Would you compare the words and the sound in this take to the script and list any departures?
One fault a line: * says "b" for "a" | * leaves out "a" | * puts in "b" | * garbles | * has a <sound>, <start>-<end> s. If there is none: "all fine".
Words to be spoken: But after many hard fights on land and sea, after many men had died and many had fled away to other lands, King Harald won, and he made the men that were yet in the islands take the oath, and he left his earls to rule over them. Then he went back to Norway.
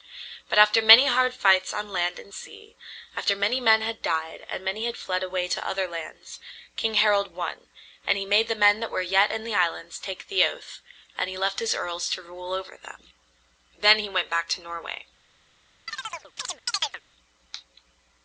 * has a chirp, 15.9-17.0 s